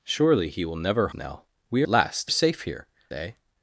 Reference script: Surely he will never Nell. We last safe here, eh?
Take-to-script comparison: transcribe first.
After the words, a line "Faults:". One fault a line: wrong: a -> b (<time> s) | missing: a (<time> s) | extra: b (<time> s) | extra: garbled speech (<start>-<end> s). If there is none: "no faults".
Surely he will never Nell. We last safe here, eh?
Faults:
no faults